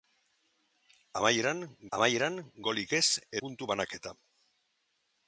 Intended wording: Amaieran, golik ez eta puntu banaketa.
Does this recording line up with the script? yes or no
no